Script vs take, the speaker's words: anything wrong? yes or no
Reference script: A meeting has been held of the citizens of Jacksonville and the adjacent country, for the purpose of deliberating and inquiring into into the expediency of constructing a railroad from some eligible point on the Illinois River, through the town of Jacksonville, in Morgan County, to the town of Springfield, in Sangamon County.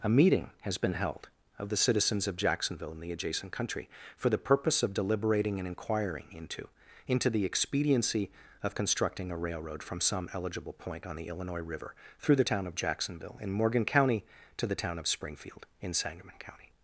no